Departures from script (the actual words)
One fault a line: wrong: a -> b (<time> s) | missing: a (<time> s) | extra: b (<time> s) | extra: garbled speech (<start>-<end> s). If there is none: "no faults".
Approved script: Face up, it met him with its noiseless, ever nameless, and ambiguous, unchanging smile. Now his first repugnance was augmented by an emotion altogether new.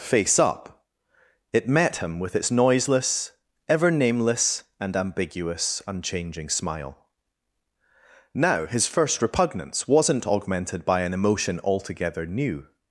wrong: was -> wasn't (9.9 s)